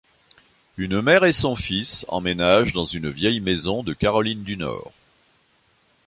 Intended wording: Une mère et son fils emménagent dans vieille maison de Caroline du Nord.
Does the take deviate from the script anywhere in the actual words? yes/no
yes